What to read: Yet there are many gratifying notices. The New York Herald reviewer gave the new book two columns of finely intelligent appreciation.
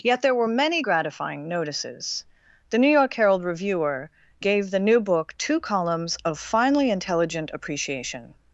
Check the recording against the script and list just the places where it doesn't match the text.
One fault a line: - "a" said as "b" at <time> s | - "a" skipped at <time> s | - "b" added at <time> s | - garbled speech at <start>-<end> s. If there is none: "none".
- "are" said as "were" at 0.3 s